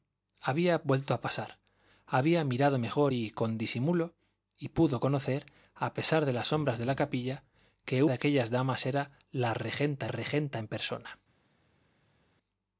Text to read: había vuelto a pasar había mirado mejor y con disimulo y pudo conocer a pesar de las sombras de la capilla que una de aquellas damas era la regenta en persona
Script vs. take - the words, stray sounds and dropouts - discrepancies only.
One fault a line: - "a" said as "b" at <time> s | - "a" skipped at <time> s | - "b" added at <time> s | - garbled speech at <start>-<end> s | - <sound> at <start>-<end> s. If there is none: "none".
- "una" skipped at 8.0 s
- "regenta" added at 10.1 s